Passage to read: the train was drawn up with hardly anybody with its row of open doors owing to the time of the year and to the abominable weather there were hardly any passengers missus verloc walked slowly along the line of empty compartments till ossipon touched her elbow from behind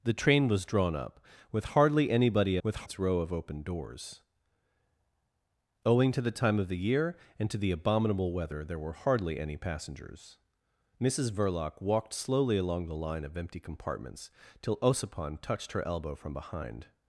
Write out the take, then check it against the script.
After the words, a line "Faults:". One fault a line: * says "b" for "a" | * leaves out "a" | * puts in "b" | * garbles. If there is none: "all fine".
the train was drawn up with hardly anybody with its row of open doors owing to the time of the year and to the abominable weather there were hardly any passengers missus verloc walked slowly along the line of empty compartments till ossipon touched her elbow from behind
Faults:
all fine